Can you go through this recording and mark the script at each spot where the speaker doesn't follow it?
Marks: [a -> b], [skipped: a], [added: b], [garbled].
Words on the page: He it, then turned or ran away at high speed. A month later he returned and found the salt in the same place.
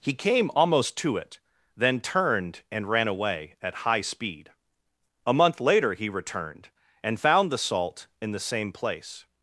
He [added: came almost to] it, then turned [or -> and] ran away at high speed. A month later he returned and found the salt in the same place.